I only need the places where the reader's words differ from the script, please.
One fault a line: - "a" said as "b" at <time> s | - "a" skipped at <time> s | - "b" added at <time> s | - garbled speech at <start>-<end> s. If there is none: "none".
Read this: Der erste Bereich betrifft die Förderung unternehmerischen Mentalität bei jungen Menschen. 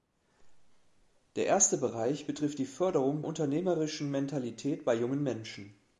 none